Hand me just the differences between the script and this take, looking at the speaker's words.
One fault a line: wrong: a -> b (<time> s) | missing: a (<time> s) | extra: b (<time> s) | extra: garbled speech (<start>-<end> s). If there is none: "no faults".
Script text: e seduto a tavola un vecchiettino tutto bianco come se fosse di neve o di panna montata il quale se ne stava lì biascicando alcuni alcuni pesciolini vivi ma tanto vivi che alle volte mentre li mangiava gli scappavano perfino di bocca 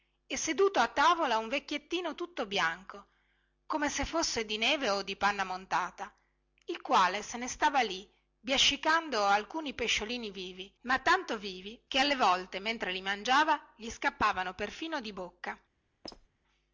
missing: alcuni (9.7 s)